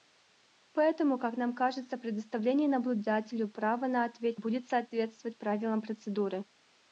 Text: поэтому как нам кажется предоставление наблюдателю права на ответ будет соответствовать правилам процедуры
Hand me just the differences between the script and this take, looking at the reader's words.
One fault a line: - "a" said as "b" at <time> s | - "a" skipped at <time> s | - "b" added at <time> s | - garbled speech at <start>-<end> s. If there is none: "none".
none